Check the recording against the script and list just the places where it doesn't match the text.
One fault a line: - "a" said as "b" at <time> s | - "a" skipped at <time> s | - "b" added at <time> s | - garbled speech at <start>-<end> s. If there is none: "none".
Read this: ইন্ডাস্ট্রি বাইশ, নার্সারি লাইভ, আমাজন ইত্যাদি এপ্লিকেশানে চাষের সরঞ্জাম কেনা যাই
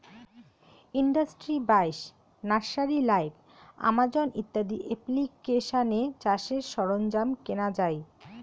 none